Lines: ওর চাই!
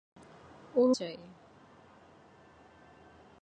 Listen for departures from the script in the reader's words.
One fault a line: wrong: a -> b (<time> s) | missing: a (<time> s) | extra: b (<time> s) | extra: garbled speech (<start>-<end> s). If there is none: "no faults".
no faults